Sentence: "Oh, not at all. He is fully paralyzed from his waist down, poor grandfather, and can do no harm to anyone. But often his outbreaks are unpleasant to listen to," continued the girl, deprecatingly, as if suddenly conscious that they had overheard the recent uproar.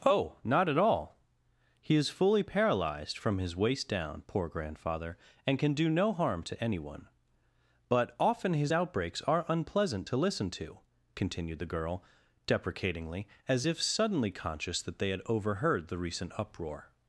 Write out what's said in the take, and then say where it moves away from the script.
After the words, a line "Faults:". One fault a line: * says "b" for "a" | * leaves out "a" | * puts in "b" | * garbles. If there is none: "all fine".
"Oh, not at all. He is fully paralyzed from his waist down, poor grandfather, and can do no harm to anyone. But often his outbreaks are unpleasant to listen to," continued the girl, deprecatingly, as if suddenly conscious that they had overheard the recent uproar.
Faults:
all fine